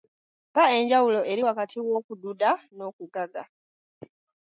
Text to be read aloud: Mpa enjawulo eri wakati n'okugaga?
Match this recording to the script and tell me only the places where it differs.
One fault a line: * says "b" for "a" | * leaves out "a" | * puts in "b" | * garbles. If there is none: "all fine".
* puts in "w'okududa"